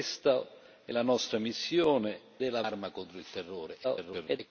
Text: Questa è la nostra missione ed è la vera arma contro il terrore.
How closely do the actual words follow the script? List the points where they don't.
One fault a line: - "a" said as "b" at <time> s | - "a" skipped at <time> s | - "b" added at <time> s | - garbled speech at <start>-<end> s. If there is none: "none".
- "ed" skipped at 2.2 s
- "vera" skipped at 2.6 s
- garbled speech at 3.8-4.4 s